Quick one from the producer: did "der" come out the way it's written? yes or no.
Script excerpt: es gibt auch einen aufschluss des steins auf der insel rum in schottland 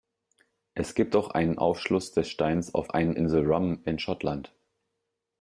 no